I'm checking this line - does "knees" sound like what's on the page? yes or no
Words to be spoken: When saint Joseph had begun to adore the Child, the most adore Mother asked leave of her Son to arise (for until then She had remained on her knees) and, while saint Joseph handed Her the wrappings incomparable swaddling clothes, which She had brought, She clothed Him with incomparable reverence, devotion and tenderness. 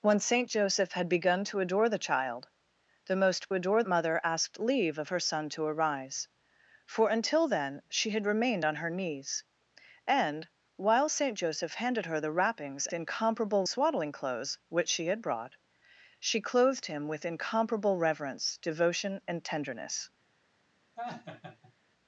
yes